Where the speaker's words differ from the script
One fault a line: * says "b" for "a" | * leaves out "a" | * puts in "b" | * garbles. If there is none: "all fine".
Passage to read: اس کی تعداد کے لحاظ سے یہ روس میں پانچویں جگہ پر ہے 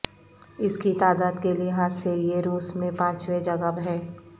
* leaves out "پر"